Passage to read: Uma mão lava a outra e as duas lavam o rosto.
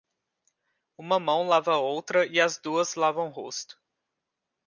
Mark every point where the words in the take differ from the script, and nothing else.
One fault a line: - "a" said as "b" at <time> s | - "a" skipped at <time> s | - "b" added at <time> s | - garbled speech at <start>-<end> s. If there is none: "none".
none